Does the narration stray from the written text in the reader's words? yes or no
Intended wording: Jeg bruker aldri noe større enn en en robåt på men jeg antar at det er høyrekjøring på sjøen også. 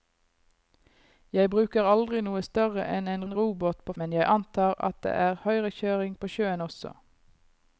no